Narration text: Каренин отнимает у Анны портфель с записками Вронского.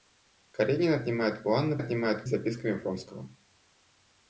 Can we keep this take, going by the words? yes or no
no